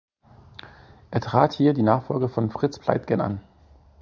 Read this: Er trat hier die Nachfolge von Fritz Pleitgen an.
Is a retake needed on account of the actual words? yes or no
no